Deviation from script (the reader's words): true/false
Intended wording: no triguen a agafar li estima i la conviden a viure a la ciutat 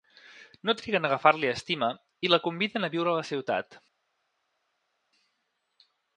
false